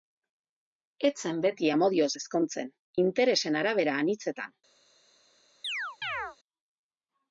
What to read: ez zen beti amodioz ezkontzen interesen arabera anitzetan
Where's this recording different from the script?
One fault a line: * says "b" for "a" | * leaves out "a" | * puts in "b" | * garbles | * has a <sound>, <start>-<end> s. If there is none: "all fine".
* has a chirp, 5.6-6.4 s